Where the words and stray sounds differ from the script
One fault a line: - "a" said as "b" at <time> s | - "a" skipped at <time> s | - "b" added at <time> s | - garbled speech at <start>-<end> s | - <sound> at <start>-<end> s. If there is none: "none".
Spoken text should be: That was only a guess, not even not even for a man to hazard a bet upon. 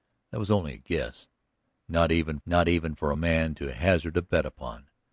none